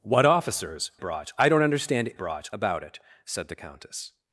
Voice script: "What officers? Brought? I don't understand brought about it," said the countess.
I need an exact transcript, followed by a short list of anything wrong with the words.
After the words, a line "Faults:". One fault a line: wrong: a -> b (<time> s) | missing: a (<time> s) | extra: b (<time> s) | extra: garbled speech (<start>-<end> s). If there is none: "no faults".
"What officers? Brought? I don't understand brought about it," said the countess.
Faults:
no faults